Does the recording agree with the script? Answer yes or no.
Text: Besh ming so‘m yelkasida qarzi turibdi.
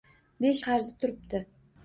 no